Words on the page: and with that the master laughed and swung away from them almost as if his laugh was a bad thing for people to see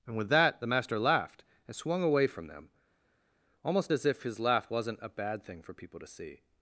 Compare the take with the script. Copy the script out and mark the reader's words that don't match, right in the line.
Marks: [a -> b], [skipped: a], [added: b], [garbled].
and with that the master laughed and swung away from them almost as if his laugh [was -> wasn't] a bad thing for people to see